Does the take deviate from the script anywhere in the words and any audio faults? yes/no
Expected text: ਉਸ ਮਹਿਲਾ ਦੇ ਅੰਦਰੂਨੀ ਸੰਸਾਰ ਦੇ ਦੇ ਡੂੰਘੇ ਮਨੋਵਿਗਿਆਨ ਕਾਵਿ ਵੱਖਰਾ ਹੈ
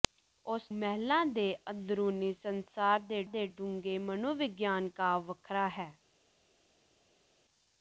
no